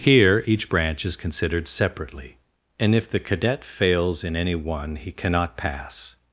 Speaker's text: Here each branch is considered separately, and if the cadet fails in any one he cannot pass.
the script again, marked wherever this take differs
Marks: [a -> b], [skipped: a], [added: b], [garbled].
Here each branch is considered separately, and if the cadet fails in any one he cannot pass.